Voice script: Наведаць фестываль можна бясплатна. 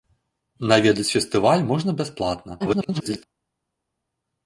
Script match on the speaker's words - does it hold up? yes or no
no